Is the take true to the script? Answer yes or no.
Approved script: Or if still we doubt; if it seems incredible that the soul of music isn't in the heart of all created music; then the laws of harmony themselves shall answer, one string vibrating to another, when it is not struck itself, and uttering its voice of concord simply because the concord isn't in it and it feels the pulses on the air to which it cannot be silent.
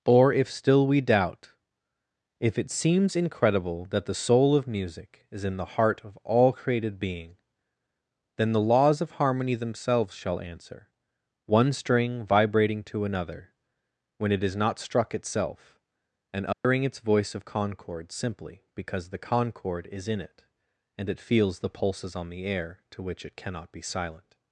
no